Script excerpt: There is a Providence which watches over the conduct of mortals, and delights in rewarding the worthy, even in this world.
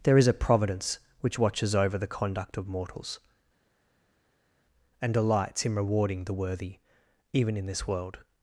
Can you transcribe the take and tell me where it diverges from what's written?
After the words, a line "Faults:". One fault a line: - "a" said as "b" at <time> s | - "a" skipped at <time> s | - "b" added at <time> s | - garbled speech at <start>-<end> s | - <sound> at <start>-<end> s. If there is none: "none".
There is a Providence which watches over the conduct of mortals, and delights in rewarding the worthy, even in this world.
Faults:
none